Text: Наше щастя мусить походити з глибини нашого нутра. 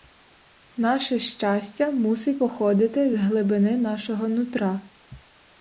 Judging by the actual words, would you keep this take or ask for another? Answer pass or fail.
pass